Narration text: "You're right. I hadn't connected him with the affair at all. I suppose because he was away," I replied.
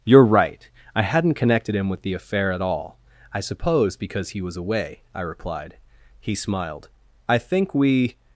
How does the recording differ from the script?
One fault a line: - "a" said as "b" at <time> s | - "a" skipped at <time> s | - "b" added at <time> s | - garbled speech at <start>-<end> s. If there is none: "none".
- "He smiled I think we" added at 6.2 s